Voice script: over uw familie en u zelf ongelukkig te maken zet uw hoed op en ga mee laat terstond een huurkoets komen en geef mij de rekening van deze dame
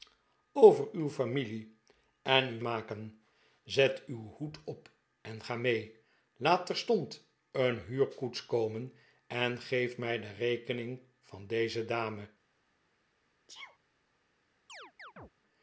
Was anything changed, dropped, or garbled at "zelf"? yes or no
yes